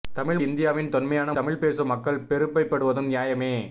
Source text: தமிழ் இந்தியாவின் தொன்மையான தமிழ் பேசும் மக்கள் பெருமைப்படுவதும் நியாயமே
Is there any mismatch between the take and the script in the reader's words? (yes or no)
no